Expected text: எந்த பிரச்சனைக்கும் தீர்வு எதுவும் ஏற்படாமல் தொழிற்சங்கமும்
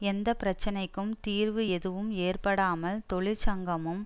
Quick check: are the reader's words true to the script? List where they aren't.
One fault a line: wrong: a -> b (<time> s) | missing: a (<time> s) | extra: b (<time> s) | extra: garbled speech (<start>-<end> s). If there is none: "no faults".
no faults